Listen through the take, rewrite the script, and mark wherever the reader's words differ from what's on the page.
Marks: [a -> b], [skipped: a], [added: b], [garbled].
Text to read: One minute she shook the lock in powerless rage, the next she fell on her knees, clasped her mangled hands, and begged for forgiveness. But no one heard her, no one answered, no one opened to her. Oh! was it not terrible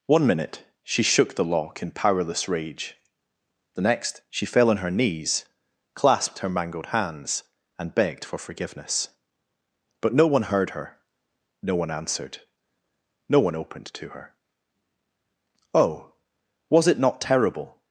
One minute she shook the lock in powerless rage, the next she fell on her knees, clasped her mangled hands, and begged for forgiveness. But no one heard her, no one answered, no one opened to her. Oh! was it not terrible